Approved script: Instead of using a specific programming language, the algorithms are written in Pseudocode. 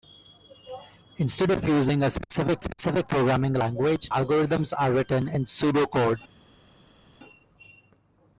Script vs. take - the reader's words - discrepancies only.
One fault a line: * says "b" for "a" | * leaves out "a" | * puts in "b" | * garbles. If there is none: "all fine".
* puts in "specific"
* leaves out "the"